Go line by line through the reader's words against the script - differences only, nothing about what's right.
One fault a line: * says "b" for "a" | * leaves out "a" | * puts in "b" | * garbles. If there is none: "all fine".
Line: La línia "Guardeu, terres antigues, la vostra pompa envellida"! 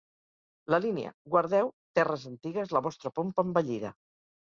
all fine